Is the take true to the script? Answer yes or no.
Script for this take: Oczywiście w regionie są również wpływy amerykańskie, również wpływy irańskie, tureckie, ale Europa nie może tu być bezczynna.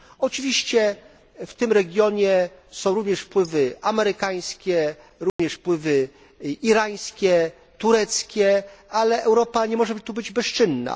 no